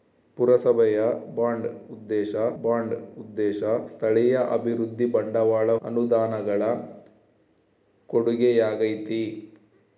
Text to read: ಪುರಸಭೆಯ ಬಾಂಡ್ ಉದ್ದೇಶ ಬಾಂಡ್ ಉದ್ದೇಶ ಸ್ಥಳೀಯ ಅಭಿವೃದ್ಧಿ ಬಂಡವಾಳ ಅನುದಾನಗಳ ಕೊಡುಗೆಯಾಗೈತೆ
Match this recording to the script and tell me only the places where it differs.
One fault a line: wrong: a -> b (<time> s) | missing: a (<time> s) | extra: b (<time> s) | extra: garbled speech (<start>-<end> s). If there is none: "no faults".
no faults